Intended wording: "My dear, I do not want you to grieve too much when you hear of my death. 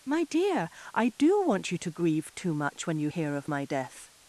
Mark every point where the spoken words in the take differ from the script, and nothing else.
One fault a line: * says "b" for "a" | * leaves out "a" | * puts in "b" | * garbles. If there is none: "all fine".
* leaves out "not"